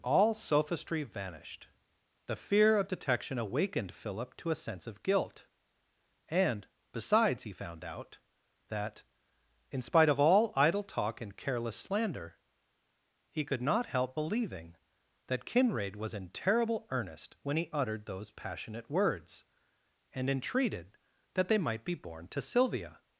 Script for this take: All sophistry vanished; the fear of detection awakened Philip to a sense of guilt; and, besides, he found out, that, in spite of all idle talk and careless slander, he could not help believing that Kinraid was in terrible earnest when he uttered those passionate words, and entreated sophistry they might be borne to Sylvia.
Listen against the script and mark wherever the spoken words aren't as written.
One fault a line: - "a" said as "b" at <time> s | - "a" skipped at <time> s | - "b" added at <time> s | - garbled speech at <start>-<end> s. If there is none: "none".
- "sophistry" said as "that" at 21.3 s